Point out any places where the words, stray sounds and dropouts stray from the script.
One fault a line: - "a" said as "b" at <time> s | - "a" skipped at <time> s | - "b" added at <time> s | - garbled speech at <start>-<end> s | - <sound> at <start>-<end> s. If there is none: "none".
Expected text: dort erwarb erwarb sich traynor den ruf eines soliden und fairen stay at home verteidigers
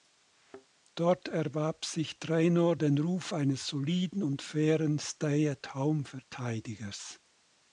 - thud at 0.3-0.7 s
- "erwarb" skipped at 1.9 s